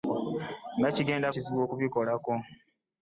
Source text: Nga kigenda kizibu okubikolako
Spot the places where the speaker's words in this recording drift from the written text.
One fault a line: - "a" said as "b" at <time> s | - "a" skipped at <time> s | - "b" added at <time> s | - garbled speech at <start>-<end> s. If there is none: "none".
none